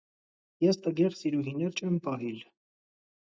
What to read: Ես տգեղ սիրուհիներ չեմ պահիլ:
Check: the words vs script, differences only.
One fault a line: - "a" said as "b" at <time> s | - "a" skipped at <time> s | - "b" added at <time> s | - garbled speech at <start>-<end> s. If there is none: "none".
none